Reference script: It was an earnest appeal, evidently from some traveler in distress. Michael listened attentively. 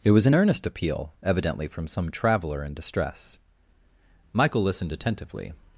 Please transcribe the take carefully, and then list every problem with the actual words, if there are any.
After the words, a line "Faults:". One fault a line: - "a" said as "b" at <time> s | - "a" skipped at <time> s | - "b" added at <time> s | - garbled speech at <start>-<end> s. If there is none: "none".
It was an earnest appeal, evidently from some traveler in distress. Michael listened attentively.
Faults:
none